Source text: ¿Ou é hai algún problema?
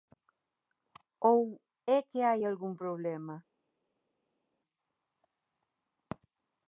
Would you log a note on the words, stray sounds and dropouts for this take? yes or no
yes